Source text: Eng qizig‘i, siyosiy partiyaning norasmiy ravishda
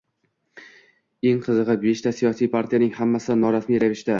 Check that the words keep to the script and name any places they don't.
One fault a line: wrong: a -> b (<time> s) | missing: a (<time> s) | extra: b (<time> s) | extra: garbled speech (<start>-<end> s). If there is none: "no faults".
extra: beshta (1.9 s)
extra: hammasi (3.0 s)